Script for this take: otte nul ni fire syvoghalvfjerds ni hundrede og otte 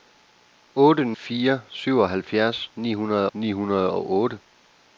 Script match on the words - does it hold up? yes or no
no